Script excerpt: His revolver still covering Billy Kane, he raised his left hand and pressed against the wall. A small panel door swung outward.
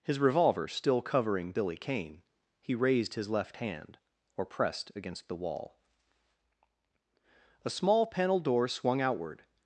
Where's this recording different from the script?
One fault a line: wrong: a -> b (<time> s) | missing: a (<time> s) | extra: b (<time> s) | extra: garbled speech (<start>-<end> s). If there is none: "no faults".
wrong: and -> or (4.3 s)